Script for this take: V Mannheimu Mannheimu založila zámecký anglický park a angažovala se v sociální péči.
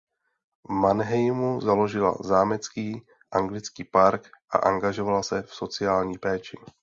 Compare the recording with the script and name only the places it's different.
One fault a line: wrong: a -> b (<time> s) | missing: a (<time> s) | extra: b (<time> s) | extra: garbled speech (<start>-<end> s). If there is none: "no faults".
missing: Mannheimu (1.6 s)